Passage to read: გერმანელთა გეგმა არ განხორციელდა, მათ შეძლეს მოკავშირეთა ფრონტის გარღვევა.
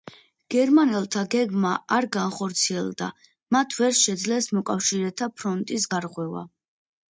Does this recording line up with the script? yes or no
no